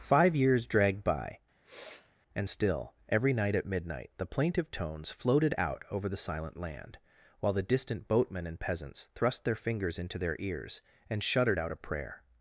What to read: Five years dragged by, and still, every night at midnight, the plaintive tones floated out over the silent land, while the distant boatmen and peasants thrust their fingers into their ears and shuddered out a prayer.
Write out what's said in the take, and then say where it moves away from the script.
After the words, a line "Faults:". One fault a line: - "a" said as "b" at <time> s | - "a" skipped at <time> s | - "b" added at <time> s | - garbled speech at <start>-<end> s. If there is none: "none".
Five years dragged by, and still, every night at midnight, the plaintive tones floated out over the silent land, while the distant boatmen and peasants thrust their fingers into their ears and shuddered out a prayer.
Faults:
none